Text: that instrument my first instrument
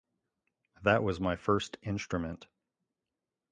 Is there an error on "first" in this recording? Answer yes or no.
no